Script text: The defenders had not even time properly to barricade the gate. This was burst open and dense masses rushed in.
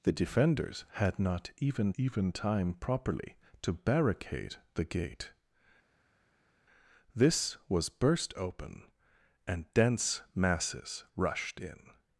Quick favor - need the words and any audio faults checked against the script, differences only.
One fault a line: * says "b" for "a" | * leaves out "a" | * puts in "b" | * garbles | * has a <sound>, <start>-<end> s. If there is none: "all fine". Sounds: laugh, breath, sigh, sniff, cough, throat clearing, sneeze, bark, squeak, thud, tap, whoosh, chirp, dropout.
* puts in "even"